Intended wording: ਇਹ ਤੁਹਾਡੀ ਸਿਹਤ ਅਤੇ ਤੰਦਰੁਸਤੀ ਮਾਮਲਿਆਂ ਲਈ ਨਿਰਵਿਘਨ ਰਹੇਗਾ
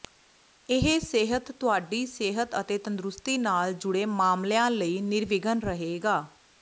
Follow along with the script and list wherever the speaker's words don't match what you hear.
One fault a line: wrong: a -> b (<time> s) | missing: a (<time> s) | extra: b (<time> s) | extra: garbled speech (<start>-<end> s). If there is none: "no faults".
extra: ਸਿਹਤ (1.0 s)
extra: ਨਾਲ ਜੁੜੇ (3.4 s)